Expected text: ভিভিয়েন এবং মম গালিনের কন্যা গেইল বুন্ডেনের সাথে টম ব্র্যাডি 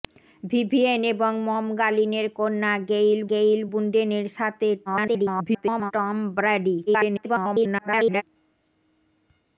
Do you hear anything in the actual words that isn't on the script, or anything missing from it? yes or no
yes